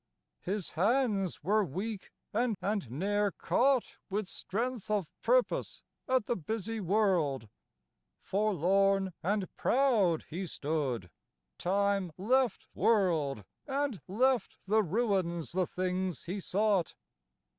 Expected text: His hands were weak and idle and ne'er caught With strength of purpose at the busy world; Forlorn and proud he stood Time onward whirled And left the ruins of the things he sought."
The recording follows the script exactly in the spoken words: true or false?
false